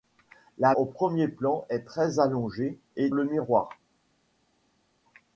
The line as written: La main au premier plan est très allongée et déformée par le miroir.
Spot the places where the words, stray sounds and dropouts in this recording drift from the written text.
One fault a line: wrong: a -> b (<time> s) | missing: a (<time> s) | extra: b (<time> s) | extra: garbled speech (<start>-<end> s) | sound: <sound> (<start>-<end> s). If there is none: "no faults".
missing: main (0.7 s)
missing: déformée par (3.1 s)